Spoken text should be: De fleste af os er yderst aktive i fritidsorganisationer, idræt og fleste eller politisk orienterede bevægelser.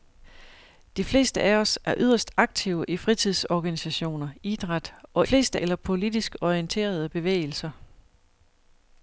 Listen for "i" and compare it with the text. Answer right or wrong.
right